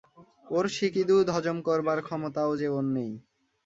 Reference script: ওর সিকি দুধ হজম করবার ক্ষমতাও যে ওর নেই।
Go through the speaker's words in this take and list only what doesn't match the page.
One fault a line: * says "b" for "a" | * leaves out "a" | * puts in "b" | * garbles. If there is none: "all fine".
all fine